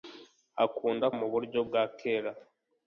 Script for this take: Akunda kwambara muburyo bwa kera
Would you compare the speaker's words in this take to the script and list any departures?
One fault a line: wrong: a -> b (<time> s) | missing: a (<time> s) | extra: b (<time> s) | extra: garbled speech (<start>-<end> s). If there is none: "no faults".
missing: kwambara (1.1 s)